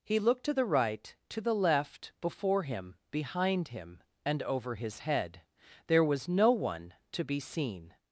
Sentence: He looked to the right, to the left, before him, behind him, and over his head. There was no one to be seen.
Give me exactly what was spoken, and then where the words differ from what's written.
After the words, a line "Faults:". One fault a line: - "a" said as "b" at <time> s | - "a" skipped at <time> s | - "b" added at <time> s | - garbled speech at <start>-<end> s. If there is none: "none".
He looked to the right, to the left, before him, behind him, and over his head. There was no one to be seen.
Faults:
none